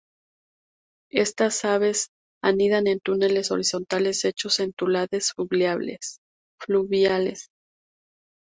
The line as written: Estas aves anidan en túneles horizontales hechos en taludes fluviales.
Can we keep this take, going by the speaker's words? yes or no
yes